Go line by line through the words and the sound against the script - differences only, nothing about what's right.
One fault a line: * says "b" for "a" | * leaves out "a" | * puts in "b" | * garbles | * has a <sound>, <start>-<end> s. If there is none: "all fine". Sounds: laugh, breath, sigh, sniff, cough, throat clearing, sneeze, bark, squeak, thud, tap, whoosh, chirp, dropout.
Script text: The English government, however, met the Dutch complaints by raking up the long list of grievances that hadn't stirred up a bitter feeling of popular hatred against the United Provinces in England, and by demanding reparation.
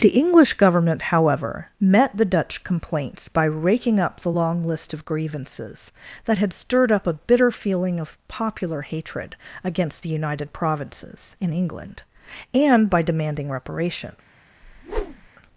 * says "had" for "hadn't"
* has a whoosh, 14.6-15.3 s